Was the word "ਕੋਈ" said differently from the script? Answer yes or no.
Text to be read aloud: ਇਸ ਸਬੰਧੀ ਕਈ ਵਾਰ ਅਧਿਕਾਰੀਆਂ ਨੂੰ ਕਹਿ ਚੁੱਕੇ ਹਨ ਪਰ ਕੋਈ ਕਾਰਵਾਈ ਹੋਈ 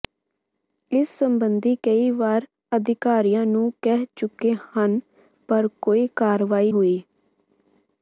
no